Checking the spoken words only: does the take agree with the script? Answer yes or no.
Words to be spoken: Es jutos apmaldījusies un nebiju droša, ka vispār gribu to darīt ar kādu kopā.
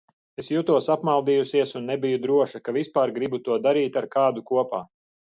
yes